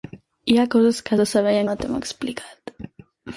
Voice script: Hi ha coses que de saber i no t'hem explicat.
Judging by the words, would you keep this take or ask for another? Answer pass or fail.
pass